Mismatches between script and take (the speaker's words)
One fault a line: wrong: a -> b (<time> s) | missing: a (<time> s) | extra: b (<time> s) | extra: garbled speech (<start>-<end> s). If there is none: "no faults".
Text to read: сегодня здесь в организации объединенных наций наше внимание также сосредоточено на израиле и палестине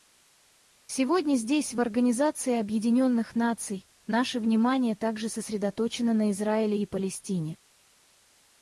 no faults